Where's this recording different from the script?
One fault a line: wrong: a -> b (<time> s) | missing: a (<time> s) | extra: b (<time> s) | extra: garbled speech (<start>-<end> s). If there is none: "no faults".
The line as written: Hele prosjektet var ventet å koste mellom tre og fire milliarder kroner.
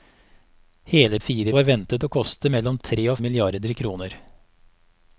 wrong: prosjektet -> fire (1.2 s)
missing: fire (3.2 s)